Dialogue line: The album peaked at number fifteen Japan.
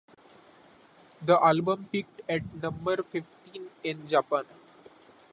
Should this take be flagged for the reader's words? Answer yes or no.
yes